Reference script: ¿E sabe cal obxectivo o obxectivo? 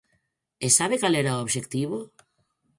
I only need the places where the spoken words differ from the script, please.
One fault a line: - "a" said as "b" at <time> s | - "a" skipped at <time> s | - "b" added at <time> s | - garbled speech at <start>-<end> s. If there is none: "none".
- "obxectivo" said as "era" at 1.2 s